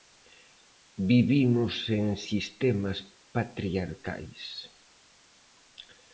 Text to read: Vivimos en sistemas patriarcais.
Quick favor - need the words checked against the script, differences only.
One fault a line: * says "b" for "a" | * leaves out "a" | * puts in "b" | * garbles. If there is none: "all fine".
all fine